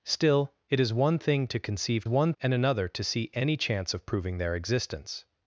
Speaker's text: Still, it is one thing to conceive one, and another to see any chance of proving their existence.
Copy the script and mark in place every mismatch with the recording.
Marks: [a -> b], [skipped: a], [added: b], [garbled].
Still, it is one thing to conceive one, and another to see any chance of proving their existence.